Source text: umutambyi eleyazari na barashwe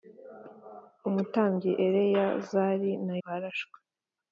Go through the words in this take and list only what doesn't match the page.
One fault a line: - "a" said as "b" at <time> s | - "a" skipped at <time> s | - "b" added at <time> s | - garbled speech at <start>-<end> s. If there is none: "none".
none